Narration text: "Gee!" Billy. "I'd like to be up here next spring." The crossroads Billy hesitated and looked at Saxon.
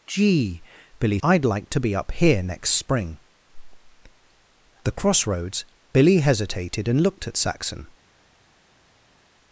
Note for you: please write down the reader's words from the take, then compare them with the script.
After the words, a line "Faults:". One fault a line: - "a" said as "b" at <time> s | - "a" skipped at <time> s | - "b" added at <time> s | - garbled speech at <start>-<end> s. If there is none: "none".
"Gee!" Billy. "I'd like to be up here next spring." The crossroads Billy hesitated and looked at Saxon.
Faults:
none